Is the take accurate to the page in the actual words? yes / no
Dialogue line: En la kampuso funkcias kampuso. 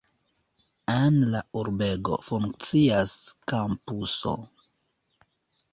no